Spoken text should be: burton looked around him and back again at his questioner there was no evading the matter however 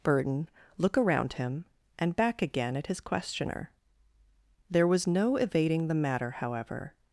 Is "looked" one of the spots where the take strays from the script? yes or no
yes